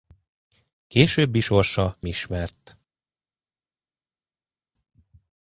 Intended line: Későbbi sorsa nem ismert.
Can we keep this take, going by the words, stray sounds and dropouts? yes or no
no